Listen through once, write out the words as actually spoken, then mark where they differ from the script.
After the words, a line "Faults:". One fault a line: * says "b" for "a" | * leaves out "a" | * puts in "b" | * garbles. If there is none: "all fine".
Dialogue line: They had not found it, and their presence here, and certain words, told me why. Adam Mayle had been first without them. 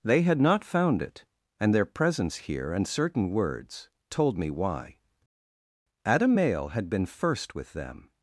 They had not found it, and their presence here, and certain words, told me why. Adam Mayle had been first with them.
Faults:
* says "with" for "without"